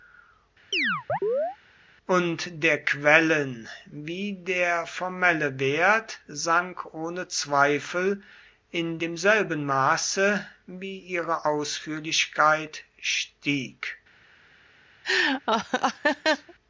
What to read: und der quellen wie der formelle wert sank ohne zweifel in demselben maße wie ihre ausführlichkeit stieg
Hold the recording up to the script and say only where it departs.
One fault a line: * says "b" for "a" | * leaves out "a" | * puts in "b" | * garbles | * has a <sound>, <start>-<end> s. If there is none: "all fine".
* has a chirp, 0.7-1.6 s
* has a laugh, 15.0-16.5 s